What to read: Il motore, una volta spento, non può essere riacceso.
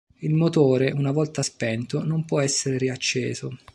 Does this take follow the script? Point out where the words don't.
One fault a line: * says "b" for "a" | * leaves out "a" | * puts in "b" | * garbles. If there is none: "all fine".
all fine